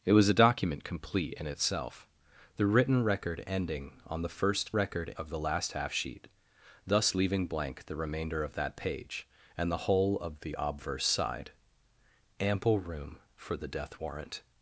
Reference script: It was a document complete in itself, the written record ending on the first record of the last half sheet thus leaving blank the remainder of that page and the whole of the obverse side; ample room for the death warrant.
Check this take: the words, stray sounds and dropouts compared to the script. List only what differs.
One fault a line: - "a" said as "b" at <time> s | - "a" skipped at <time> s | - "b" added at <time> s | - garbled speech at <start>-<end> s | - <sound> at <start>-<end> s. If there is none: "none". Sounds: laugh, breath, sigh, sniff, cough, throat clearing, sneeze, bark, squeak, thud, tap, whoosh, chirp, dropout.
none